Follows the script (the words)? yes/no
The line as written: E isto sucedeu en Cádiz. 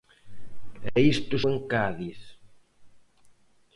no